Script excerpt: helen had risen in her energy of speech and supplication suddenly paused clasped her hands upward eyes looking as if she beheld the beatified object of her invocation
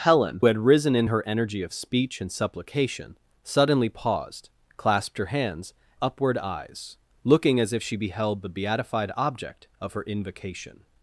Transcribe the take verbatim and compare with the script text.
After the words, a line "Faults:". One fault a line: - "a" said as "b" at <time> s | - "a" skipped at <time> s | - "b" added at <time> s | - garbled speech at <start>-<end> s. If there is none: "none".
helen had risen in her energy of speech and supplication suddenly paused clasped her hands upward eyes looking as if she beheld the beatified object of her invocation
Faults:
none